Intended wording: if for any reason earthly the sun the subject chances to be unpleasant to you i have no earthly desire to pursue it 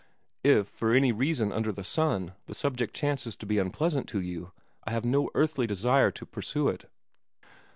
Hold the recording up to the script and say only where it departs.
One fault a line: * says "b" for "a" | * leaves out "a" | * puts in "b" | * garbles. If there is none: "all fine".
* says "under" for "earthly"